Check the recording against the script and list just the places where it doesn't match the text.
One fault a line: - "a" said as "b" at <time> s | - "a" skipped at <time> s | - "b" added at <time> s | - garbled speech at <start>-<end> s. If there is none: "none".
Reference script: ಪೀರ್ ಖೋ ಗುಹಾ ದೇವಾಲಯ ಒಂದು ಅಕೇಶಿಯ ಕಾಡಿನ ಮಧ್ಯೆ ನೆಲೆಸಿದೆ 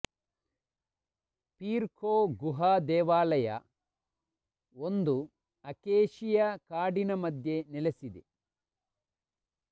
none